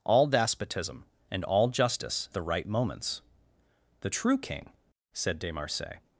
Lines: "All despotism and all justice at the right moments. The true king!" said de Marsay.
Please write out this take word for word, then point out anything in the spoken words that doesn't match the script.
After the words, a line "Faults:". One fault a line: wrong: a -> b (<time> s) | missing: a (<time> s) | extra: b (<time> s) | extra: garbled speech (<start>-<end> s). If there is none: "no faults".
"All despotism and all justice the right moments. The true king!" said de Marsay.
Faults:
missing: at (2.3 s)